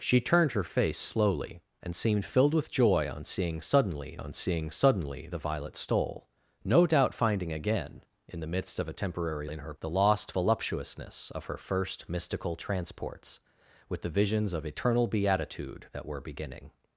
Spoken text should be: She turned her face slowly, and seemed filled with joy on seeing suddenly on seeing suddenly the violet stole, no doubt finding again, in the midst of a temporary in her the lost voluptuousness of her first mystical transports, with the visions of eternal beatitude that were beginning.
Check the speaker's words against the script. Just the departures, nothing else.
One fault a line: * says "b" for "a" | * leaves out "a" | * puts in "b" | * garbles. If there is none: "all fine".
all fine